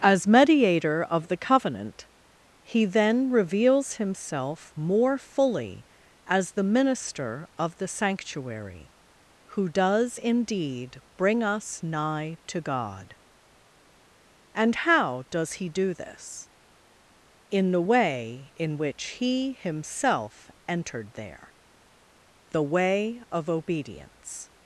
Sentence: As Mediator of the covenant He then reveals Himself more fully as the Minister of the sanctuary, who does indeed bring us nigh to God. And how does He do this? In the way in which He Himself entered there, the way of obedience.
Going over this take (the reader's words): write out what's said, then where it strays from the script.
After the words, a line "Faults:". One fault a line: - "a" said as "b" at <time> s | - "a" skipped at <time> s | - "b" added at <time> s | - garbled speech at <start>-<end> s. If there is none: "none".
As Mediator of the covenant He then reveals Himself more fully as the Minister of the sanctuary, who does indeed bring us nigh to God. And how does He do this? In the way in which He Himself entered there, the way of obedience.
Faults:
none